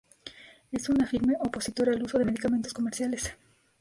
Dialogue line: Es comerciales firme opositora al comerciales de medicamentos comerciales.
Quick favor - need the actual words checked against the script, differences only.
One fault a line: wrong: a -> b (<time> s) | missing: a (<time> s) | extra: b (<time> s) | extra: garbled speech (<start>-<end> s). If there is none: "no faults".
wrong: comerciales -> una (0.9 s)
wrong: comerciales -> uso (2.0 s)